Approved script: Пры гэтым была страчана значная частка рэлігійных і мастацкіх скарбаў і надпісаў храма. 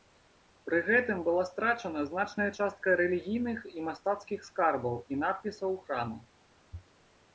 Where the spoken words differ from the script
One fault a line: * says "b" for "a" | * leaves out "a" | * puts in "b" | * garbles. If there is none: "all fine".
all fine